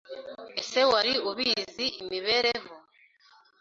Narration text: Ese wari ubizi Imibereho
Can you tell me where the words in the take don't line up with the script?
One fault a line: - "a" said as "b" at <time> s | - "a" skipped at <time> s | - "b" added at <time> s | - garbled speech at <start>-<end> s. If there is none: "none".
none